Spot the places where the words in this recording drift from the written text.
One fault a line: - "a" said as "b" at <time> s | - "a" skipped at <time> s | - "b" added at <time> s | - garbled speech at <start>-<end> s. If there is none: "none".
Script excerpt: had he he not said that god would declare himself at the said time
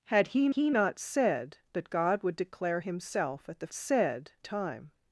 none